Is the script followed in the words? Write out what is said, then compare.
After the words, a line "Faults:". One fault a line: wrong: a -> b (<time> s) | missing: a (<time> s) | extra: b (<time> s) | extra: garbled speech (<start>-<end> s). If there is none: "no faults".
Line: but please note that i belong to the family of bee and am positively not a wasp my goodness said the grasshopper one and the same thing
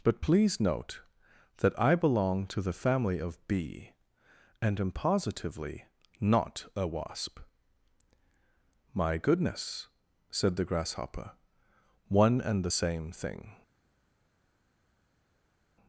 but please note that i belong to the family of bee and am positively not a wasp my goodness said the grasshopper one and the same thing
Faults:
no faults